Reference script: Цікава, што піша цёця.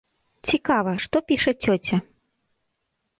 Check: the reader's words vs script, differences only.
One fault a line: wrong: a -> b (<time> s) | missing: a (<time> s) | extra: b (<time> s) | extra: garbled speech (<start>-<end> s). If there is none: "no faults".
no faults